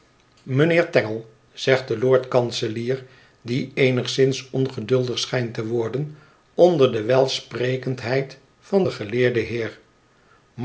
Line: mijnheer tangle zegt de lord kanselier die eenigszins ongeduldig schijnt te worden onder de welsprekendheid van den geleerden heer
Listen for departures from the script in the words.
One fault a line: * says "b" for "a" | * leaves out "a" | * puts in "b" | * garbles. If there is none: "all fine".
all fine